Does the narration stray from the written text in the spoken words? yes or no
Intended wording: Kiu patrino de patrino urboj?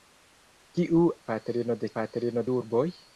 no